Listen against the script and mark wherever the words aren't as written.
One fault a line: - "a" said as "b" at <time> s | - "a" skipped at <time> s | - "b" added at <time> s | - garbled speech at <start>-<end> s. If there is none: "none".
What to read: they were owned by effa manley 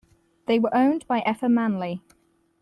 none